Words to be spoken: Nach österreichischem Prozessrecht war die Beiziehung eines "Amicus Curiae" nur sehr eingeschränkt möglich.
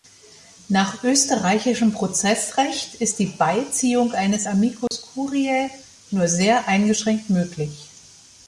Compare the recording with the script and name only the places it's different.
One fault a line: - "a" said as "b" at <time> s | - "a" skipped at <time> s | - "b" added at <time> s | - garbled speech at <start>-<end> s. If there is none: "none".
- "war" said as "ist" at 3.0 s